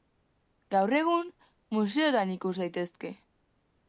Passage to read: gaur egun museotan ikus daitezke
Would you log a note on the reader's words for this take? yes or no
no